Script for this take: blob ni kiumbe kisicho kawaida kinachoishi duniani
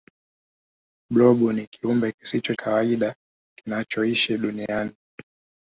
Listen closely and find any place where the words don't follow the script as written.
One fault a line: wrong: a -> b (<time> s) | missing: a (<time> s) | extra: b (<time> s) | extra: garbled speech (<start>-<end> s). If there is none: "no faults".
no faults